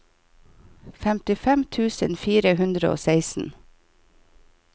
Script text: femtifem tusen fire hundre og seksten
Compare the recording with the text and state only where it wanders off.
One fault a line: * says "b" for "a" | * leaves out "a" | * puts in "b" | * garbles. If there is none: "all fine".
all fine